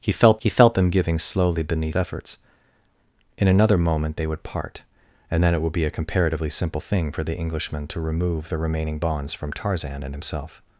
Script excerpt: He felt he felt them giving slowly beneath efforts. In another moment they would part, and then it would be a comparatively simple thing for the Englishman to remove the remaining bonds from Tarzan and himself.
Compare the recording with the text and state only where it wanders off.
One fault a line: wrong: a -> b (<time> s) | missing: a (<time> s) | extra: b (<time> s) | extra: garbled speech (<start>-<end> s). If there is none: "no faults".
no faults